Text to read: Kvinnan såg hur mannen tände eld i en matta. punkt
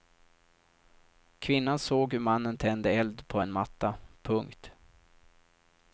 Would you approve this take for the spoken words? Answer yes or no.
no